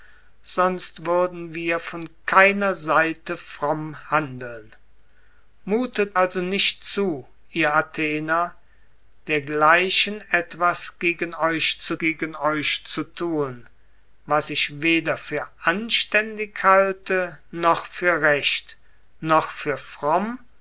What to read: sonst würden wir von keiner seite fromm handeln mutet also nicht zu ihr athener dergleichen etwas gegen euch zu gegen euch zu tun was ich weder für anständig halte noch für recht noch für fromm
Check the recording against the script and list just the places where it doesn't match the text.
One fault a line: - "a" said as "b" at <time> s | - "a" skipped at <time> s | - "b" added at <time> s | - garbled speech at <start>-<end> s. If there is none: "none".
none